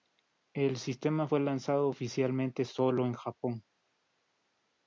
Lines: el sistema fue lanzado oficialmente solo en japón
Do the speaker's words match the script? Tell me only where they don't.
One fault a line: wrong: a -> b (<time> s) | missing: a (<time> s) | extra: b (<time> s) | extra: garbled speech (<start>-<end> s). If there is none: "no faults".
no faults